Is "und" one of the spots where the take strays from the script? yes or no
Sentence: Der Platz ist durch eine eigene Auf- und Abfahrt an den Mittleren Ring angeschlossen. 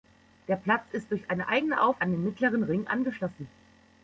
yes